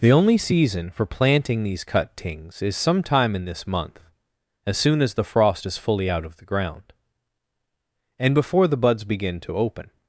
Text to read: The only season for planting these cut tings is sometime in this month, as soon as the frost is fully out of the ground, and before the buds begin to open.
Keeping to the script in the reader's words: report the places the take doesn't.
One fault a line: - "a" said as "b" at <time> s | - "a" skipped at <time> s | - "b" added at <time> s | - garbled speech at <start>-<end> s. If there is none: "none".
none